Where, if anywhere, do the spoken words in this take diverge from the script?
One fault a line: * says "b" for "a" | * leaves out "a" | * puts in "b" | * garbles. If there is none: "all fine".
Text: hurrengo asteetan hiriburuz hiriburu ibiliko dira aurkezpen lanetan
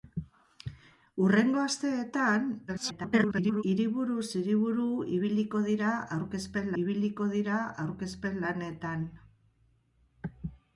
* garbles
* puts in "ibiliko dira aurkezpen"